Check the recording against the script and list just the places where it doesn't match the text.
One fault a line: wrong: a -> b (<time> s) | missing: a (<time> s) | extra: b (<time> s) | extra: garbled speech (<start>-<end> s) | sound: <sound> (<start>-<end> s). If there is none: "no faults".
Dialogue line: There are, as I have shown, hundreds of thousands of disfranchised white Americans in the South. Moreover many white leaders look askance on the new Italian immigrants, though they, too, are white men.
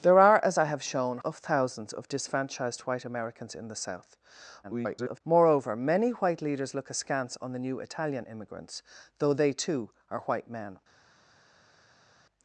missing: hundreds (1.2 s)
extra: garbled speech (4.6-5.2 s)